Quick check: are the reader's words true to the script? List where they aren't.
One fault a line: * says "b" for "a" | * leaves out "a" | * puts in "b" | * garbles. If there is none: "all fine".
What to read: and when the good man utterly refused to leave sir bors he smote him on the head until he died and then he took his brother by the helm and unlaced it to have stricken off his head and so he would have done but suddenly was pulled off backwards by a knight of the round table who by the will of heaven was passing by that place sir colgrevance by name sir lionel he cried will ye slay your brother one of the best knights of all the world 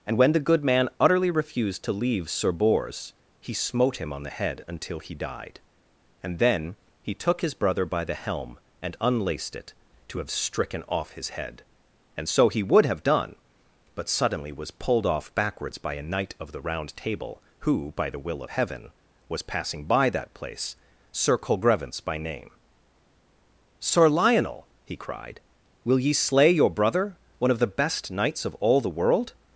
all fine